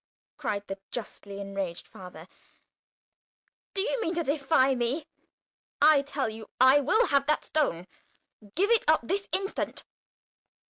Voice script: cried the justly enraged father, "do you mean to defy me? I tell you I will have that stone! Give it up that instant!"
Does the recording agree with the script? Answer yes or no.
no